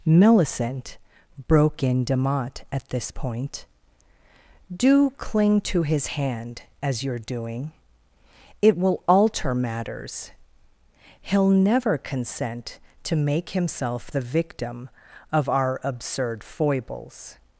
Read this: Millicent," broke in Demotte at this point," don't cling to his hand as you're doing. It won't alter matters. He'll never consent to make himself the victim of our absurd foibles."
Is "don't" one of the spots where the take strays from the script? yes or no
yes